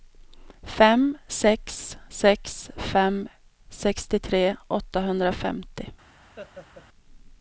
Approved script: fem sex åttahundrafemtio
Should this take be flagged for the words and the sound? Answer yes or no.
yes